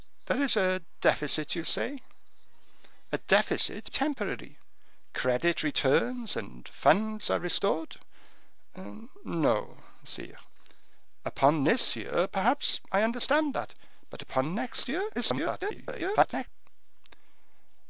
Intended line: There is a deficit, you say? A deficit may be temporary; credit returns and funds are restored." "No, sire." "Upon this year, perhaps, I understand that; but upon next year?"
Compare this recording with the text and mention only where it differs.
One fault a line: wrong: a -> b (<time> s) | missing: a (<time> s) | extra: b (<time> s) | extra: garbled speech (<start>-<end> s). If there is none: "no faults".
missing: may be (3.9 s)
extra: garbled speech (15.2-16.5 s)